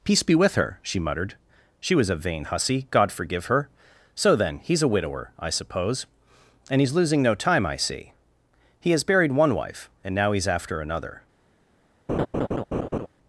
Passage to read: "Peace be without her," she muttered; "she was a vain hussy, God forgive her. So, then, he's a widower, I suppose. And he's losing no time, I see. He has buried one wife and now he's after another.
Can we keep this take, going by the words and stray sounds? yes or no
no